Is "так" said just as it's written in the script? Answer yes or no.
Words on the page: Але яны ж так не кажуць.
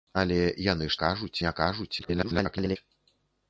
no